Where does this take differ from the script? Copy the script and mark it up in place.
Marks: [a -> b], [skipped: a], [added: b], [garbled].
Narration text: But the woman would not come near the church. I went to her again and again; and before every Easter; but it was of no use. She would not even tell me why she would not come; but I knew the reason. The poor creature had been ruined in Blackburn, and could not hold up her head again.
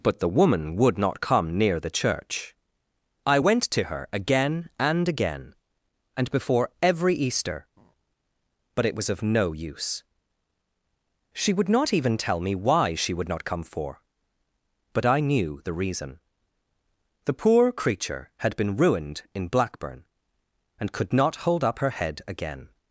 But the woman would not come near the church. I went to her again and again; and before every Easter; but it was of no use. She would not even tell me why she would not come; [added: for] but I knew the reason. The poor creature had been ruined in Blackburn, and could not hold up her head again.